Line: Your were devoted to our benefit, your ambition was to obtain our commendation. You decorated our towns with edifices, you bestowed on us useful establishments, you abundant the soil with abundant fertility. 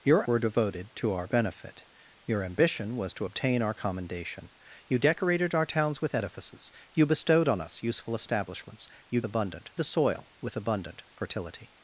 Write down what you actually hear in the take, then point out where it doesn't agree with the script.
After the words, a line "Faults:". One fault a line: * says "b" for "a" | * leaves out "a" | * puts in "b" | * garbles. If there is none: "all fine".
Your were devoted to our benefit, your ambition was to obtain our commendation. You decorated our towns with edifices, you bestowed on us useful establishments, you abundant the soil with abundant fertility.
Faults:
all fine